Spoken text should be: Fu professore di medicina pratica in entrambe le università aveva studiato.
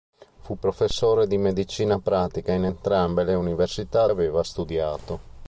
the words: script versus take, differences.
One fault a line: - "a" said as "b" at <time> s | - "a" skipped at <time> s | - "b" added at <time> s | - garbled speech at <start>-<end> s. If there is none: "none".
none